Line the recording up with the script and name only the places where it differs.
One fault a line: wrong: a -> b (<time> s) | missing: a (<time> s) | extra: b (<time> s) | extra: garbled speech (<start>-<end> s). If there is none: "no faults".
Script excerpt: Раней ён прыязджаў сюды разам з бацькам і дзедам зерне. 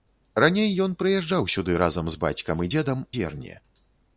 no faults